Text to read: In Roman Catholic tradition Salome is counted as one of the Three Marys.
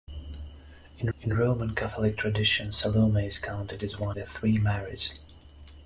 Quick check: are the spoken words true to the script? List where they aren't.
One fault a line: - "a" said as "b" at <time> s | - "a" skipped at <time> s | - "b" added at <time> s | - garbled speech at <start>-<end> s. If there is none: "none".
- "in" added at 1.2 s
- "of" skipped at 4.2 s